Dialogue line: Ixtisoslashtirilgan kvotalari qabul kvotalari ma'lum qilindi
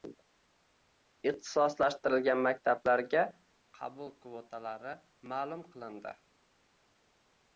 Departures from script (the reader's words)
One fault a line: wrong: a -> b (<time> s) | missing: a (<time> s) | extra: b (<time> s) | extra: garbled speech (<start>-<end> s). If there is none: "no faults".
wrong: kvotalari -> maktablarga (2.5 s)